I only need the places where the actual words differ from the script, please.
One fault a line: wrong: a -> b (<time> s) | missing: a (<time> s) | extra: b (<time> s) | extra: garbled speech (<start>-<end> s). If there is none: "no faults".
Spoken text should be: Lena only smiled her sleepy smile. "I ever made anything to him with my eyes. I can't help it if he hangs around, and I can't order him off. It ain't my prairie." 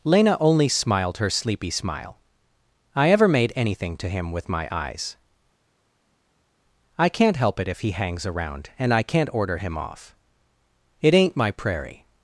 no faults